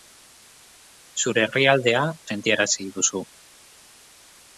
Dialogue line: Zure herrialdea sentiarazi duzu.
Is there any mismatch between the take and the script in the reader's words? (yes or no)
no